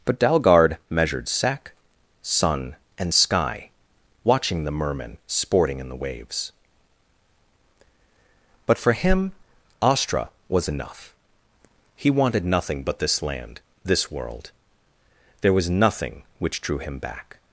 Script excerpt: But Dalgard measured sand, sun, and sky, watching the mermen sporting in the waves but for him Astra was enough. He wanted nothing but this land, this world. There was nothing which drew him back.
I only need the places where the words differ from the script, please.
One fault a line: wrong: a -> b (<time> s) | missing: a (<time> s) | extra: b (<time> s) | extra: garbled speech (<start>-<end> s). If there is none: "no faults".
wrong: sand -> sack (1.3 s)